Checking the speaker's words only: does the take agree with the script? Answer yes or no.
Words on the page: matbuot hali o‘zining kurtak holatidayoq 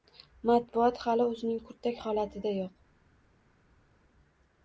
yes